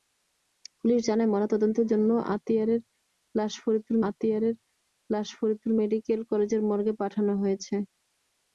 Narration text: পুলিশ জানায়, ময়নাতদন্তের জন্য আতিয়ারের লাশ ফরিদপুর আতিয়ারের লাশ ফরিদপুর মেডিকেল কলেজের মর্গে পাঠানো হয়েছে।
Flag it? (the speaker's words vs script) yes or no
no